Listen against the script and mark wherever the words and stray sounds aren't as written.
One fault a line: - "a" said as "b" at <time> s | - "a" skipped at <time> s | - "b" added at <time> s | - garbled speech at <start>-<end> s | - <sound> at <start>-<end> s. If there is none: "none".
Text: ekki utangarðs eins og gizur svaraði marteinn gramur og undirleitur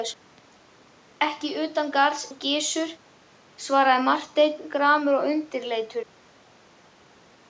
- "eins" skipped at 2.2 s